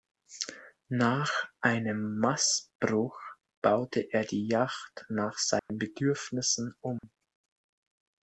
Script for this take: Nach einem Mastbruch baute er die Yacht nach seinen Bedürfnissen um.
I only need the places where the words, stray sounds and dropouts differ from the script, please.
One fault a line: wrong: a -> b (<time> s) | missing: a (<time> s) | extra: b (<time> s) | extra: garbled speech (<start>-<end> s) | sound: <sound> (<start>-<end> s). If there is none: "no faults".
sound: dropout (5.6-5.7 s)
sound: dropout (7.0-7.0 s)